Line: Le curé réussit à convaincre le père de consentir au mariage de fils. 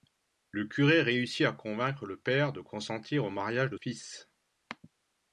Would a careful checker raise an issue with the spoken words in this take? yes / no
no